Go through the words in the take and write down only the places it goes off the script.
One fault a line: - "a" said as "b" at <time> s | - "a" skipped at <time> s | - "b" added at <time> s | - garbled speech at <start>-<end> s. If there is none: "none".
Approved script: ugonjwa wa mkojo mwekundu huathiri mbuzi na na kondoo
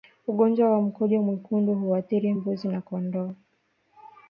- "na" skipped at 2.8 s